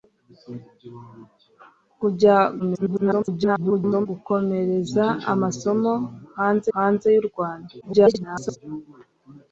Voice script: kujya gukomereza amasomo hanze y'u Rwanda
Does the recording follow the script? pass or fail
fail